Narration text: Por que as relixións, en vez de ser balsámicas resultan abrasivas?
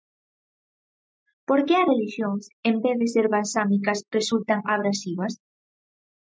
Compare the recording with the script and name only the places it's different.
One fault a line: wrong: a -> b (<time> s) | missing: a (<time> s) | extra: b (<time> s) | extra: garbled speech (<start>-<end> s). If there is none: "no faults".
no faults